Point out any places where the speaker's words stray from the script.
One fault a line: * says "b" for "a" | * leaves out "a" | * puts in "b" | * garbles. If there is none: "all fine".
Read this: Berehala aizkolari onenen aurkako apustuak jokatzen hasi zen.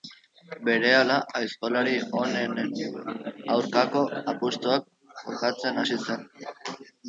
all fine